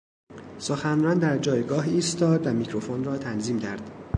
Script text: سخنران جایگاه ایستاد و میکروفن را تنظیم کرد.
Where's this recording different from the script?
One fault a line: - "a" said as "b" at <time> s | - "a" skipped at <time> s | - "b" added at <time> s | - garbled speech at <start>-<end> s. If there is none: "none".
- "در" added at 1.2 s